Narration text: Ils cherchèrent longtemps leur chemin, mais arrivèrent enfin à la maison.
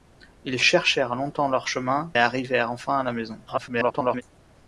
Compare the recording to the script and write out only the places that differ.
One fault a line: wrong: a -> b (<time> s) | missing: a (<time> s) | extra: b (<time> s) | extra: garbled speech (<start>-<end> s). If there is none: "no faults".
missing: mais (2.1 s)
extra: garbled speech (3.5-4.2 s)